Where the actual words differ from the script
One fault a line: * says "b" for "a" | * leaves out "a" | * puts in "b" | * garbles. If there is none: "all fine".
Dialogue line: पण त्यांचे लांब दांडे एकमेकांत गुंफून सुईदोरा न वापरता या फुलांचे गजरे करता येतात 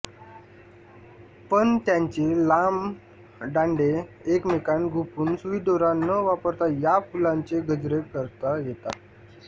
all fine